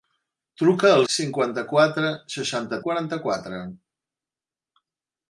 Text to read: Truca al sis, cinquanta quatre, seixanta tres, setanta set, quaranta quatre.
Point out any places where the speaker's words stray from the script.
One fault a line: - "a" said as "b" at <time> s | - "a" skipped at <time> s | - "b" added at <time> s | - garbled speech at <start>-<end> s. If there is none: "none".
- "sis" skipped at 1.0 s
- "tres setanta set" skipped at 2.8 s